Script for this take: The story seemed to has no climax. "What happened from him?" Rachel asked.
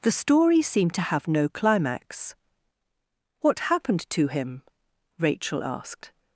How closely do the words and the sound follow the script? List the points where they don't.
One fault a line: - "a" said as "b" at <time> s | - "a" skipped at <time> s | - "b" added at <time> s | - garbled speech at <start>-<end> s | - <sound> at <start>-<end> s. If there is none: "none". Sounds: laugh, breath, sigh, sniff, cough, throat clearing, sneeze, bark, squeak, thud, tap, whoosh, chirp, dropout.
- "has" said as "have" at 1.0 s
- "from" said as "to" at 4.1 s